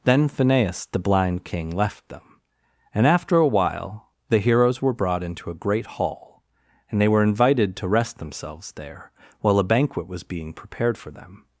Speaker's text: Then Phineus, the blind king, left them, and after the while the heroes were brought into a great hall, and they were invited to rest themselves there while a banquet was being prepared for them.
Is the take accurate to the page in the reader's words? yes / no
no